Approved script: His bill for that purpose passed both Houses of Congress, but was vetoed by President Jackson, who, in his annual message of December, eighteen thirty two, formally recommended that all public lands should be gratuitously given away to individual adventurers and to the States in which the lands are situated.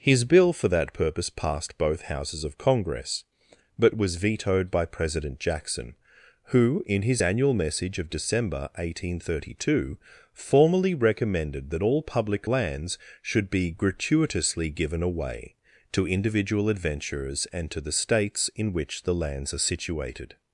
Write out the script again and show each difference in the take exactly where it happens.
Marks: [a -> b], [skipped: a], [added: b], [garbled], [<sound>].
His bill for that purpose passed both Houses of Congress, but was vetoed by President Jackson, who, in his annual message of December, eighteen thirty two, formally recommended that all public lands should be gratuitously given away to individual adventurers and to the States in which the lands are situated.